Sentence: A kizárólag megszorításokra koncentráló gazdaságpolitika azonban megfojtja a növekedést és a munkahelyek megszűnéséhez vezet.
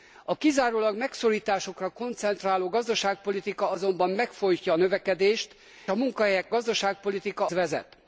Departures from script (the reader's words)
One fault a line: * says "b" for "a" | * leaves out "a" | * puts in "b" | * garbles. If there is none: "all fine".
* leaves out "és"
* says "gazdaságpolitika" for "megszűnéséhez"